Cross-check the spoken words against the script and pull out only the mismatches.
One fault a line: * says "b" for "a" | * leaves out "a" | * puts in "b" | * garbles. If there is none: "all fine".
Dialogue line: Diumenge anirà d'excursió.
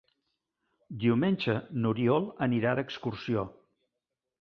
* puts in "n'Oriol"